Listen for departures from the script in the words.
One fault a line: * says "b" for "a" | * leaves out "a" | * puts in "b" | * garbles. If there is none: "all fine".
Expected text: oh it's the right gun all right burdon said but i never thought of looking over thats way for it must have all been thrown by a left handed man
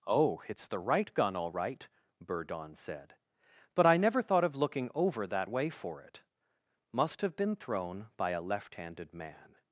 * says "that" for "thats"
* leaves out "all"